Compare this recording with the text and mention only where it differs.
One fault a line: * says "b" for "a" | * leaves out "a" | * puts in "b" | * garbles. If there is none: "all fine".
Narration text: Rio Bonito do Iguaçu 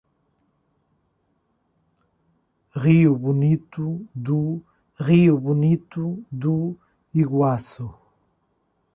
* puts in "rio Bonito do"